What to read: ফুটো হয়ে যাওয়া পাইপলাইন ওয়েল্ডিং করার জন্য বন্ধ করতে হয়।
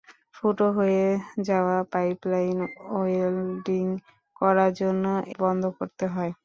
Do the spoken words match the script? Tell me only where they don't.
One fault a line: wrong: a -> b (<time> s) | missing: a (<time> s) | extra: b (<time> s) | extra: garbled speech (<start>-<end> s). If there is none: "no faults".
no faults